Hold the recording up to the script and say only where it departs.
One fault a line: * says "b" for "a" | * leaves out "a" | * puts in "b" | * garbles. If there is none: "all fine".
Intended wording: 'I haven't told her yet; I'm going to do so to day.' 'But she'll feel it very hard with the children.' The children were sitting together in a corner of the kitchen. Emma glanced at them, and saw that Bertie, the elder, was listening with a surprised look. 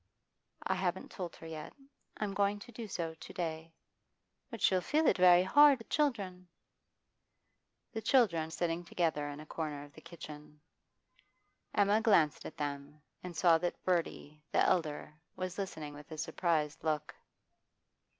* leaves out "with"
* leaves out "were"